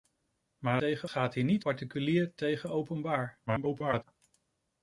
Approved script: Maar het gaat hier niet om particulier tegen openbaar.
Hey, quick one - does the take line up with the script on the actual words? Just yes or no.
no